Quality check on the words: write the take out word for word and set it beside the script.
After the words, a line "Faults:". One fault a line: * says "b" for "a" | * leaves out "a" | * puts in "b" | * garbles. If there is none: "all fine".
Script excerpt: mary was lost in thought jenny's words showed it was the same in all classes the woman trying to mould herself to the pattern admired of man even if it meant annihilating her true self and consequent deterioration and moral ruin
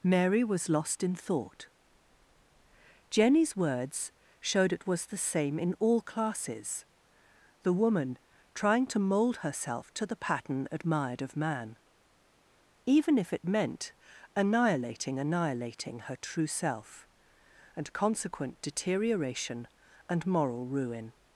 mary was lost in thought jenny's words showed it was the same in all classes the woman trying to mould herself to the pattern admired of man even if it meant annihilating annihilating her true self and consequent deterioration and moral ruin
Faults:
* puts in "annihilating"